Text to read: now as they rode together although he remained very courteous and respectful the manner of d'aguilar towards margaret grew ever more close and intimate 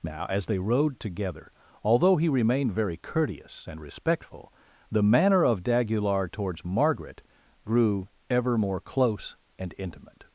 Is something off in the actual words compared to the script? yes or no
no